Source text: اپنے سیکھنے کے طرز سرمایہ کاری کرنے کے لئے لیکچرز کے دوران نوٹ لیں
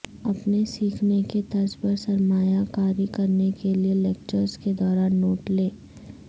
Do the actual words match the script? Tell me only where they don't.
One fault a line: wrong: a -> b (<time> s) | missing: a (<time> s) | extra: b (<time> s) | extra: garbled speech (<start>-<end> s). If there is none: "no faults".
extra: پر (1.8 s)